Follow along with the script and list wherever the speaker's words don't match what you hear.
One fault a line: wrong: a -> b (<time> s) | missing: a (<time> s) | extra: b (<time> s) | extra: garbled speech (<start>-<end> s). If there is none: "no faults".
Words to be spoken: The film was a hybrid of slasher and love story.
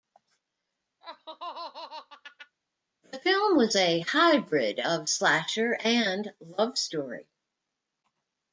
no faults